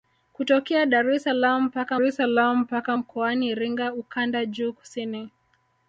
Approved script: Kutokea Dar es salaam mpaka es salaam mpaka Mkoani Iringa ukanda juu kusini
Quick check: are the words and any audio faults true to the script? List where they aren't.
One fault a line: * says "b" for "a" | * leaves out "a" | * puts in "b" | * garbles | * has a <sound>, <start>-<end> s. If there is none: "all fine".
all fine